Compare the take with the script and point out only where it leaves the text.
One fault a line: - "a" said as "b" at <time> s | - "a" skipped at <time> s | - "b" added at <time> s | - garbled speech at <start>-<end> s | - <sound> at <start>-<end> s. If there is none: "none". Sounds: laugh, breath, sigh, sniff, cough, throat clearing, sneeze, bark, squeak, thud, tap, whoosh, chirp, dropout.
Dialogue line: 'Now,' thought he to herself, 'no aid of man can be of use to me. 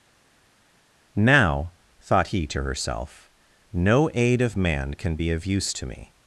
none